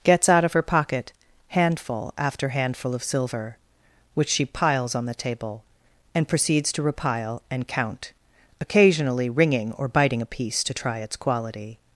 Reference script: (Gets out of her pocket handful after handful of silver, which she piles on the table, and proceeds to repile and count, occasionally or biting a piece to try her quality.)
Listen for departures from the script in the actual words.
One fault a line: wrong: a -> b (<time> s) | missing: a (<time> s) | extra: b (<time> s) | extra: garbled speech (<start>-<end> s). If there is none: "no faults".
extra: ringing (9.3 s)
wrong: her -> its (11.0 s)